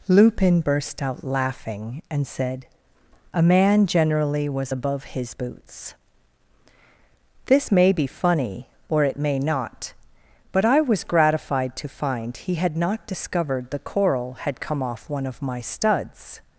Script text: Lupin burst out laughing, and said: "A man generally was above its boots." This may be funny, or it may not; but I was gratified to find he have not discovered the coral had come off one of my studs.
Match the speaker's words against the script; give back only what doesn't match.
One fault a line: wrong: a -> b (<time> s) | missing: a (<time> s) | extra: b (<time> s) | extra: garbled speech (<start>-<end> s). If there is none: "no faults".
wrong: its -> his (5.0 s)
wrong: have -> had (12.5 s)